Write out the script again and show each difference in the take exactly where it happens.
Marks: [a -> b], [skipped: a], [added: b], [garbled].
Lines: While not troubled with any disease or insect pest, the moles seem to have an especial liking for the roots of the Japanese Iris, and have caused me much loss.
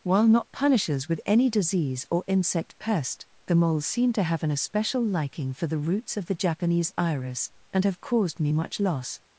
While not [troubled -> punishers] with any disease or insect pest, the moles seem to have an especial liking for the roots of the Japanese Iris, and have caused me much loss.